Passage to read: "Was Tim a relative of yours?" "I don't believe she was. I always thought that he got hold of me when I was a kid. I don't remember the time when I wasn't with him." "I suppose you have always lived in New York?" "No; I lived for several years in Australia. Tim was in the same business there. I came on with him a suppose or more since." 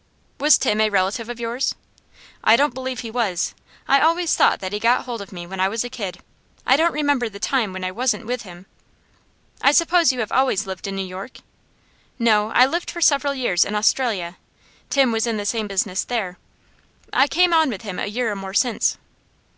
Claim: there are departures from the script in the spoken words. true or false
true